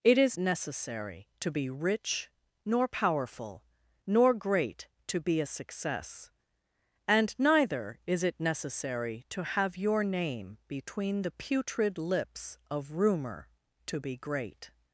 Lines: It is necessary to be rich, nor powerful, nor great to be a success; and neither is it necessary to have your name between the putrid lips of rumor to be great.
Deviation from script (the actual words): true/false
false